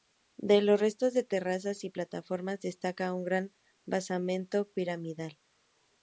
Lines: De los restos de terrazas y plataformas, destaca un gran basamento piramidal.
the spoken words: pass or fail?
pass